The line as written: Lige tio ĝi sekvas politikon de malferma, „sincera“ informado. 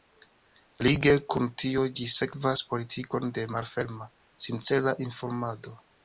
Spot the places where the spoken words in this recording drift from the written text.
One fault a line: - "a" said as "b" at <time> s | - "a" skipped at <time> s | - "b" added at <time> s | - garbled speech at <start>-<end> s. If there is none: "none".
- "kun" added at 1.3 s